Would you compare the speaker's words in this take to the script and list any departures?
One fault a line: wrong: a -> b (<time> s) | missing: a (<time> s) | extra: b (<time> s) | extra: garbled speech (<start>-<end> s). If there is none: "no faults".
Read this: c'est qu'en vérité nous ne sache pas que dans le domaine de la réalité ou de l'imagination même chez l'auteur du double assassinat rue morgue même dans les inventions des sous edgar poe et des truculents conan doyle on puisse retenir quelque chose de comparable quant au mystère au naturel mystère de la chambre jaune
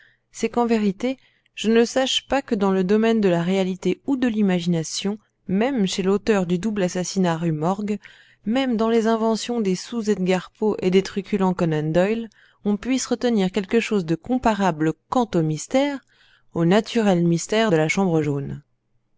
wrong: nous -> je (1.5 s)